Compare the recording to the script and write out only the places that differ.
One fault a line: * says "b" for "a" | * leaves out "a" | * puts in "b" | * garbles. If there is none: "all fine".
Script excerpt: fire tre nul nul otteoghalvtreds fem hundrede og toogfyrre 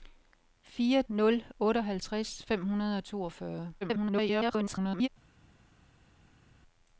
* leaves out "tre nul"
* garbles